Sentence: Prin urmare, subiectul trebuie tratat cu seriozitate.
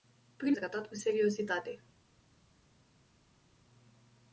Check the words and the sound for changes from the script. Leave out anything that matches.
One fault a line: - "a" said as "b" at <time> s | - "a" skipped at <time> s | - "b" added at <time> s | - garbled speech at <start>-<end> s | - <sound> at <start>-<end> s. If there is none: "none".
- "urmare subiectul trebuie" skipped at 0.6 s